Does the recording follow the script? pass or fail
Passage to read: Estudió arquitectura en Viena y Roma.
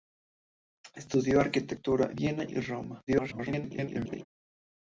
fail